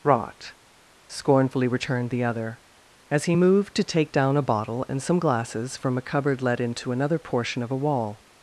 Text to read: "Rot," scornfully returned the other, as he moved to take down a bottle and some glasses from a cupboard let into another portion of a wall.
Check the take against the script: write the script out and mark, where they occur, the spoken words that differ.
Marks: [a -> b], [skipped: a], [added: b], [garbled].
"Rot," scornfully returned the other, as he moved to take down a bottle and some glasses from a cupboard let into another portion of a wall.